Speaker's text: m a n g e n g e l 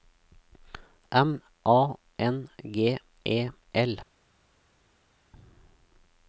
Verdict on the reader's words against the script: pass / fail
fail